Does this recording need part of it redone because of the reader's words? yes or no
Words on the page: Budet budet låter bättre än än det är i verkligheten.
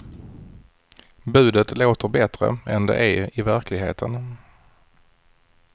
yes